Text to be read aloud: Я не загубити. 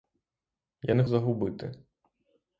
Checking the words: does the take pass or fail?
pass